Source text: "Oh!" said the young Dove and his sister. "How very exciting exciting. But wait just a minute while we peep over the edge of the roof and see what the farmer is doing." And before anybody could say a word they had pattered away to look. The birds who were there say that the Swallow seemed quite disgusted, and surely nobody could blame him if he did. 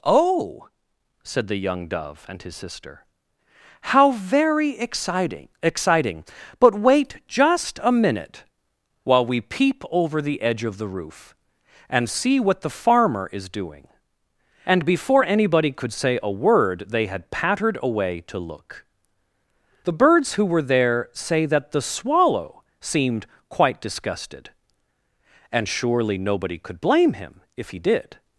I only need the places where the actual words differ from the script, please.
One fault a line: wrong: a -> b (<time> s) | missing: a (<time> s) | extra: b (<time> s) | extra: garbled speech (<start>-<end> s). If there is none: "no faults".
no faults